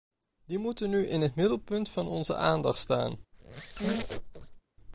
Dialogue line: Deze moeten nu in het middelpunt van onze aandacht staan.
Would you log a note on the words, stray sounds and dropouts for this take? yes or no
yes